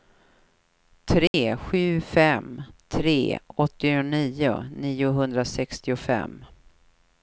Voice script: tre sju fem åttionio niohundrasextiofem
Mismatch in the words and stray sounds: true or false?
true